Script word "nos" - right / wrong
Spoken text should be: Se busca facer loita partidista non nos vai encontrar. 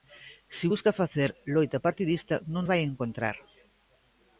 wrong